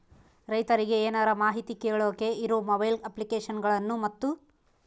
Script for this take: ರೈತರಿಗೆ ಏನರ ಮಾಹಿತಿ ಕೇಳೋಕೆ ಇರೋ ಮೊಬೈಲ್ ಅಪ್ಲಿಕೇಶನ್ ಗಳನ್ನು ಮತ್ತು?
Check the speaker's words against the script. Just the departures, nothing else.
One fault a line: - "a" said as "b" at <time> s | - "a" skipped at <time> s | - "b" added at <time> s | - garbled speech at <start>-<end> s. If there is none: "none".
none